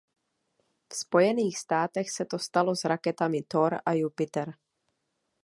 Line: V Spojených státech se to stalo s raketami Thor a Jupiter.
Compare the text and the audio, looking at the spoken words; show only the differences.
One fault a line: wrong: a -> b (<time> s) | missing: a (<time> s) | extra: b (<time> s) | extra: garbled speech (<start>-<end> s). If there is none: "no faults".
no faults